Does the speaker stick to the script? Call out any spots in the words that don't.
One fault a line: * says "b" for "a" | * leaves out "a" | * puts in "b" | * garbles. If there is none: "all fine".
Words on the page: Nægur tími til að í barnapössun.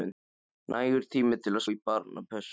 all fine